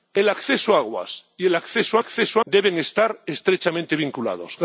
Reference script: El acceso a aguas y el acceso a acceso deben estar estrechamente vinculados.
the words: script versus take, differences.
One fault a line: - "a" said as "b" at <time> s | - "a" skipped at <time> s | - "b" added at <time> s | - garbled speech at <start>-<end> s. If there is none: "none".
none